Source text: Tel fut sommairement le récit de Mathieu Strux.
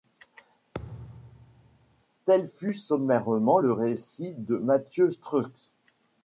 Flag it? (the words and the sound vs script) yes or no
yes